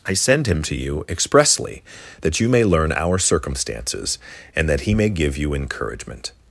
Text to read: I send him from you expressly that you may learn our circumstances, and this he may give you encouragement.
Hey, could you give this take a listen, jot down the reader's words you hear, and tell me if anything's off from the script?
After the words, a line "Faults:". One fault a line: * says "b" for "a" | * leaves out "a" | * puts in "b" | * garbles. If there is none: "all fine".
I send him to you expressly that you may learn our circumstances, and that he may give you encouragement.
Faults:
* says "to" for "from"
* says "that" for "this"